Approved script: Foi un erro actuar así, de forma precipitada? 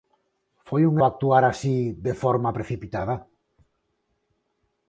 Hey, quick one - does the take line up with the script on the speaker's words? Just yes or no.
no